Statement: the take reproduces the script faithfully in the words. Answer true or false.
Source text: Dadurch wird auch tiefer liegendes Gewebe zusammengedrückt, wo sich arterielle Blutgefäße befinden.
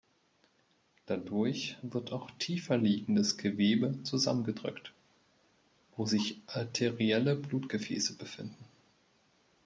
true